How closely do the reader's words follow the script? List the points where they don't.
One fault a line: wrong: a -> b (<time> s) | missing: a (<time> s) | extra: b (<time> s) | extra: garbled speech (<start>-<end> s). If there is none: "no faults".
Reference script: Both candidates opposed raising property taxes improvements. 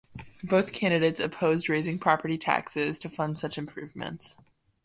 extra: to fund such (3.0 s)